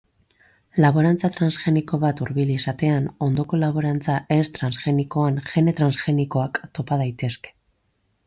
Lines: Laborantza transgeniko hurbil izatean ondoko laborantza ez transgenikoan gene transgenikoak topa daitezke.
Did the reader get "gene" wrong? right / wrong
right